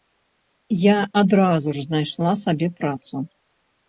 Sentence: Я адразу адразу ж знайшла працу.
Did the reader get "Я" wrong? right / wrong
right